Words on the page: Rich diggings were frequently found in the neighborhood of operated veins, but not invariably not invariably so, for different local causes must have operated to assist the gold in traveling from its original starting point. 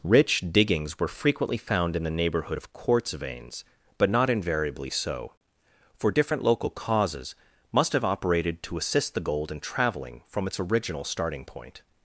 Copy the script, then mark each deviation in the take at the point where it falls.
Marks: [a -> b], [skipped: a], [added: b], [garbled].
Rich diggings were frequently found in the neighborhood of [operated -> quartz] veins, but not invariably [skipped: not invariably] so, for different local causes must have operated to assist the gold in traveling from its original starting point.